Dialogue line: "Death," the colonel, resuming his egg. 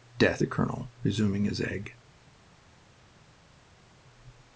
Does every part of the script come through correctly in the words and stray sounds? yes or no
yes